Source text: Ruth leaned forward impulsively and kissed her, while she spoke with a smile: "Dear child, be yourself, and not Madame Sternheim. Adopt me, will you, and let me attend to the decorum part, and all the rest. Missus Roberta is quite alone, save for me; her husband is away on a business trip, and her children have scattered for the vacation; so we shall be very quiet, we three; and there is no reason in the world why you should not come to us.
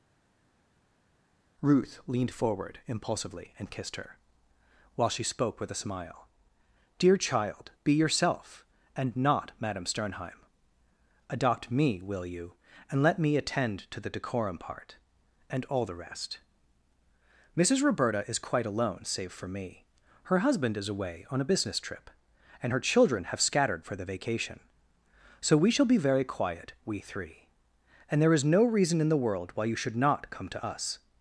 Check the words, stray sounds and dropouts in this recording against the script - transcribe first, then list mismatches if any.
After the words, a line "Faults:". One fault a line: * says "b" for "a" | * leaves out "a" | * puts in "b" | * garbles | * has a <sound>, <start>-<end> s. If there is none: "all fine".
Ruth leaned forward impulsively and kissed her, while she spoke with a smile: "Dear child, be yourself, and not Madame Sternheim. Adopt me, will you, and let me attend to the decorum part, and all the rest. Missus Roberta is quite alone, save for me; her husband is away on a business trip, and her children have scattered for the vacation; so we shall be very quiet, we three; and there is no reason in the world why you should not come to us.
Faults:
all fine